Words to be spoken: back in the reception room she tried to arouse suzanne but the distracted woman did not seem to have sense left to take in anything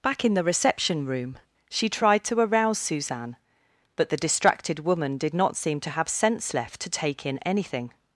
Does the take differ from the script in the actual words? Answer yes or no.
no